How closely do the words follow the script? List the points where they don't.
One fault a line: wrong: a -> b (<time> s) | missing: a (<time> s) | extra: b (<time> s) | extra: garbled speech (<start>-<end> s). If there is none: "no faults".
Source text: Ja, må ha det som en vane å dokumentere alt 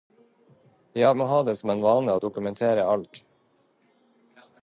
no faults